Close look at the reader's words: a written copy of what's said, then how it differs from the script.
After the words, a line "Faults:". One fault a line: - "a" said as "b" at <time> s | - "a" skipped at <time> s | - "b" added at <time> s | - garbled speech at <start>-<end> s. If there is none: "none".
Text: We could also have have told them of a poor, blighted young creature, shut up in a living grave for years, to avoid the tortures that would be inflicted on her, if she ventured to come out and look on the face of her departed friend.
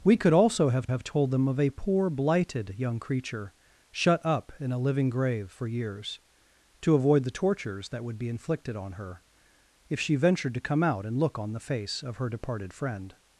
We could also have have told them of a poor, blighted young creature, shut up in a living grave for years, to avoid the tortures that would be inflicted on her, if she ventured to come out and look on the face of her departed friend.
Faults:
none